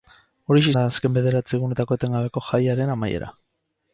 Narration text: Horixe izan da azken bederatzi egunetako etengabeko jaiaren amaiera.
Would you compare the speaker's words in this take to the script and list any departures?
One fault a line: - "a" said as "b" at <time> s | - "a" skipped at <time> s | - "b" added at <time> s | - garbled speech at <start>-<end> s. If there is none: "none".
- "izan" skipped at 0.7 s